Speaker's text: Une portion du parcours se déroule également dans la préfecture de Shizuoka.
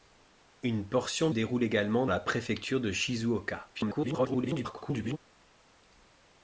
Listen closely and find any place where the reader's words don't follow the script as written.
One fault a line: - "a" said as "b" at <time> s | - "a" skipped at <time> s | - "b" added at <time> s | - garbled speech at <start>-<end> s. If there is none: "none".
- "du parcours se" skipped at 1.3 s
- "dans" skipped at 2.1 s
- garbled speech at 3.7-5.2 s